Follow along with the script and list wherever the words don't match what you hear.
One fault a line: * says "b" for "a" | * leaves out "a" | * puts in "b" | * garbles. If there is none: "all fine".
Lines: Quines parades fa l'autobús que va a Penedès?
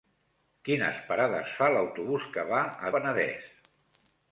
all fine